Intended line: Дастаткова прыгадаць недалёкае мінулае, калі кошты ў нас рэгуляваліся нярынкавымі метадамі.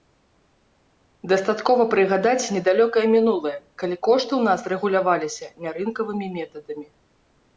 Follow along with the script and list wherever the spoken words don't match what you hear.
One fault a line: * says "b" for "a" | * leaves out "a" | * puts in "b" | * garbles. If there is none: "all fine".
all fine